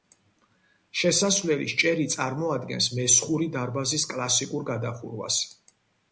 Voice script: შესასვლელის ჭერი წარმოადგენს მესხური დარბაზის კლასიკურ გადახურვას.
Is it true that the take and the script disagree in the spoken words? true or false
false